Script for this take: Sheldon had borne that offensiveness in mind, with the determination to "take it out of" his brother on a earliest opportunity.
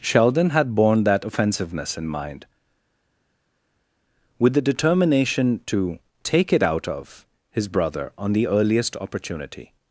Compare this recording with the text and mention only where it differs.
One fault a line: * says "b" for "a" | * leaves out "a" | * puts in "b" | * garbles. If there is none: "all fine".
* says "the" for "a"